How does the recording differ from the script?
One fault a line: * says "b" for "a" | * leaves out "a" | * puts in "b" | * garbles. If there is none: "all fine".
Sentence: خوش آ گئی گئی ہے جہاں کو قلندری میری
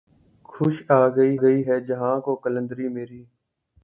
all fine